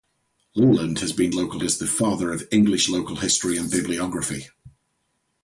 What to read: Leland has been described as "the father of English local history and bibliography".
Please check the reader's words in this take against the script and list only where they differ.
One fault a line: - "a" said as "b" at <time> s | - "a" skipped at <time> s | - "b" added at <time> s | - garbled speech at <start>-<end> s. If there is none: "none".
- "described" said as "local" at 1.3 s